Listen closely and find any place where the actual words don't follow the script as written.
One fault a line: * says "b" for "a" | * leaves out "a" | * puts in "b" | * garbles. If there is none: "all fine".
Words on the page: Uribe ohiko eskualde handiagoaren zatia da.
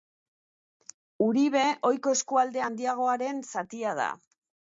all fine